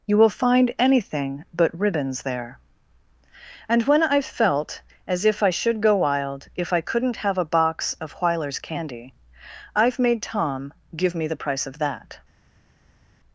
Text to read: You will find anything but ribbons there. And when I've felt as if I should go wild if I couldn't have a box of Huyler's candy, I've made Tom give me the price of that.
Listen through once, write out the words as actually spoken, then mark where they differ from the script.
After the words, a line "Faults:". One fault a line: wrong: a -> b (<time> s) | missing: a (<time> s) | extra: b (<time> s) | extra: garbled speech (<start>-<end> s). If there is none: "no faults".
You will find anything but ribbons there. And when I've felt as if I should go wild if I couldn't have a box of Huyler's candy, I've made Tom give me the price of that.
Faults:
no faults